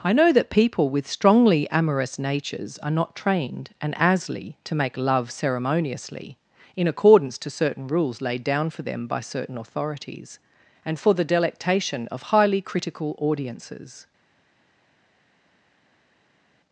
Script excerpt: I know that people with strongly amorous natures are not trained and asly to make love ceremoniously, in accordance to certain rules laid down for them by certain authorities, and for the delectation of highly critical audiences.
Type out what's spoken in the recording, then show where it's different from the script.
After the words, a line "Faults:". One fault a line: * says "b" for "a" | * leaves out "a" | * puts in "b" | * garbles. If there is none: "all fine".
I know that people with strongly amorous natures are not trained and asly to make love ceremoniously, in accordance to certain rules laid down for them by certain authorities, and for the delectation of highly critical audiences.
Faults:
all fine